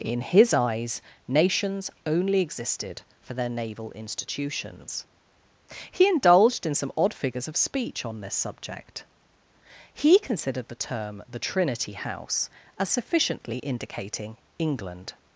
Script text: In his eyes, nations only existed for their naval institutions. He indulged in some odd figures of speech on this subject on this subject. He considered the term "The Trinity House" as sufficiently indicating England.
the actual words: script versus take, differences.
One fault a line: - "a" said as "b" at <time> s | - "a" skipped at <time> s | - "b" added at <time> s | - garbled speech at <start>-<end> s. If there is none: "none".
- "on this subject" skipped at 9.1 s